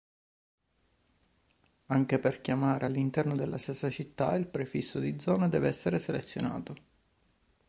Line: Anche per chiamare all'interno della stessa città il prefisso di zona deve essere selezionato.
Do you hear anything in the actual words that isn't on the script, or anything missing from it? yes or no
no